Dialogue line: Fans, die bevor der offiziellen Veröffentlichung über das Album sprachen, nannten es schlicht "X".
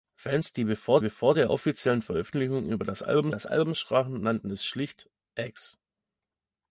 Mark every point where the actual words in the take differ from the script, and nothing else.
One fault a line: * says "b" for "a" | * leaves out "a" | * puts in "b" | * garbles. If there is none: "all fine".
* puts in "bevor"
* puts in "das Album"